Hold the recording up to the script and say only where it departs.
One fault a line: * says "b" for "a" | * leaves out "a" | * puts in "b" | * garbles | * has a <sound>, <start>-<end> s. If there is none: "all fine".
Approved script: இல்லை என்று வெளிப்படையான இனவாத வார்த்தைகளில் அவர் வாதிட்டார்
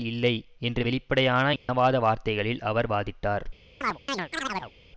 * has a dropout, 1.6-1.7 s
* has a chirp, 3.8-4.7 s